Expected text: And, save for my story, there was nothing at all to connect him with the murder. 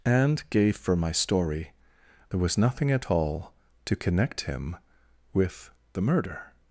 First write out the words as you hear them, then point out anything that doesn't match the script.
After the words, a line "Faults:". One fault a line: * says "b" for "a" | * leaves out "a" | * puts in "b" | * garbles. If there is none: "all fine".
And, gave for my story, there was nothing at all to connect him with the murder.
Faults:
* says "gave" for "save"